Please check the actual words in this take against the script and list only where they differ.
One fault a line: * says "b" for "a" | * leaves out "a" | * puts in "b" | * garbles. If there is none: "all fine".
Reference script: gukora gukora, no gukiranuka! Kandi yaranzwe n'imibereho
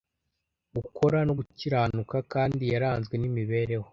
* leaves out "gukora"